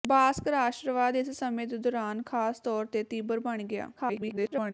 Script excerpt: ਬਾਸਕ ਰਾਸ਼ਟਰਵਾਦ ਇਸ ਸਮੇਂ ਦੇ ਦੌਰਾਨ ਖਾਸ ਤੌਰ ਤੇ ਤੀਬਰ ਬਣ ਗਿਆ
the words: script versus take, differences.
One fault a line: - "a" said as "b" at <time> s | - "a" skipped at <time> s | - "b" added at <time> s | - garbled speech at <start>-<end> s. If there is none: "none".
- garbled speech at 4.0-4.7 s